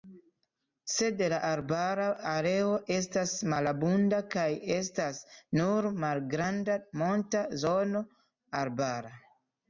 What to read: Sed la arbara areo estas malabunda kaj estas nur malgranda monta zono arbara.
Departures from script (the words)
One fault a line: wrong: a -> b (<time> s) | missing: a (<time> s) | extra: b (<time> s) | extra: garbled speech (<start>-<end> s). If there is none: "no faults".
no faults